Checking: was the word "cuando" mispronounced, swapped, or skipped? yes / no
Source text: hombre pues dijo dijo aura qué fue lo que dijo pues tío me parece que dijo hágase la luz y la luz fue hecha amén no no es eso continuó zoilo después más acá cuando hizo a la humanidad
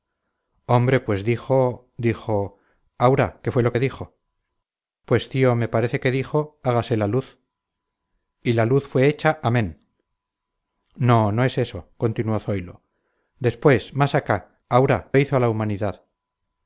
yes